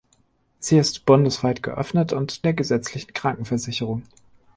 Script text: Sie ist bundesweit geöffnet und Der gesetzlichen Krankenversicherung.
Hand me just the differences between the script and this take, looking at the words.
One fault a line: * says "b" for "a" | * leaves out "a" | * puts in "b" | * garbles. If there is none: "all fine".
all fine